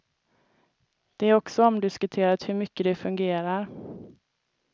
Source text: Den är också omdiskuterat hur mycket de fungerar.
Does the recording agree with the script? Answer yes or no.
no